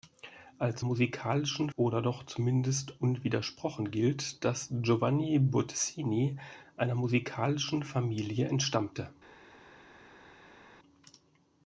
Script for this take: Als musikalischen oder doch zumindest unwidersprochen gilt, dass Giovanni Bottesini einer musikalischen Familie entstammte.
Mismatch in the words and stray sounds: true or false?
false